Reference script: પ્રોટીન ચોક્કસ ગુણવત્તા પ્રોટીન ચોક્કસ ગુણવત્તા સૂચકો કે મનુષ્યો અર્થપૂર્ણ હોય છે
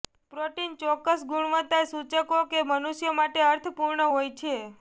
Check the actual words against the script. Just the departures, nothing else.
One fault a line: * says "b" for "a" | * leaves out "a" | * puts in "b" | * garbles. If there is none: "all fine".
* leaves out "પ્રોટીન ચોક્કસ ગુણવત્તા"
* puts in "માટે"